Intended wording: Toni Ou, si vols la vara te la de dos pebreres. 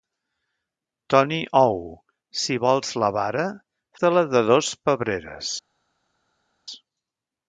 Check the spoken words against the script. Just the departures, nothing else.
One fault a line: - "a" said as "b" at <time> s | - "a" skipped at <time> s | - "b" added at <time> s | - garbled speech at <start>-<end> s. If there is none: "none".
none